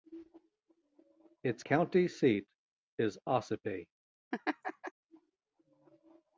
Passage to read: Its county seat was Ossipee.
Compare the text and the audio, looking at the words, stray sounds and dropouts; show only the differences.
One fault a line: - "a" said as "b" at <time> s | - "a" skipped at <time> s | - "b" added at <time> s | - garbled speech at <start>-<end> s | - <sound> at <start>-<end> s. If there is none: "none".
- "was" said as "is" at 3.0 s
- laugh at 4.3-4.9 s